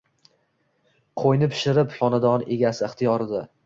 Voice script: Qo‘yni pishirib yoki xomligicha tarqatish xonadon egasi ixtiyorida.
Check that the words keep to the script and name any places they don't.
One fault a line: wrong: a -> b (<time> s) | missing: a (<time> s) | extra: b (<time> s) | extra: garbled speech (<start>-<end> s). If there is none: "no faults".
missing: yoki xomligicha tarqatish (1.9 s)